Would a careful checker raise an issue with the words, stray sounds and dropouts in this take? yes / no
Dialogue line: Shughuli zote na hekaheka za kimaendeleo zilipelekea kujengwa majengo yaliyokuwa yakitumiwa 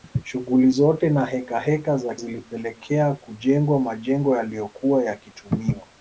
yes